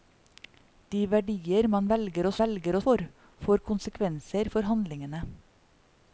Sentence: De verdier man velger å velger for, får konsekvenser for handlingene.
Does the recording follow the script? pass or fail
pass